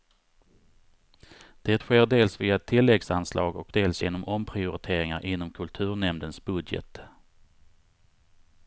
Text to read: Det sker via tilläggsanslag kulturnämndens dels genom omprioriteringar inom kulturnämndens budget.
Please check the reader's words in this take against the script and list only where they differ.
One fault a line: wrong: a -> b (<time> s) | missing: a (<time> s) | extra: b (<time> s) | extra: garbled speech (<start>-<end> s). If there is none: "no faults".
extra: dels (2.1 s)
wrong: kulturnämndens -> och (3.6 s)